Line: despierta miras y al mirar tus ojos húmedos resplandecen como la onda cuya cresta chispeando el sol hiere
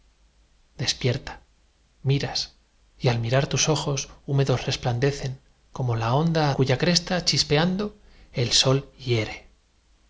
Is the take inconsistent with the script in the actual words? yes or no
no